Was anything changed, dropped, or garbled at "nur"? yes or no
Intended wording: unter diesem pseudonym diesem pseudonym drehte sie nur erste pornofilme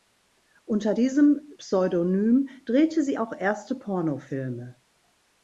yes